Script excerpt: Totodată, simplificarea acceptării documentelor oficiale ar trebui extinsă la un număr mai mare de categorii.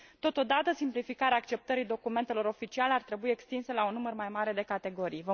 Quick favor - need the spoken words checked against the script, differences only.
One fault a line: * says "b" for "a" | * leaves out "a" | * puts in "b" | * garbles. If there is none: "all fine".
all fine